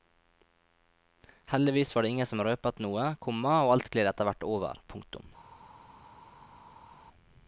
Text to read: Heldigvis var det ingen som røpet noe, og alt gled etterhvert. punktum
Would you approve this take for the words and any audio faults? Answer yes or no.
no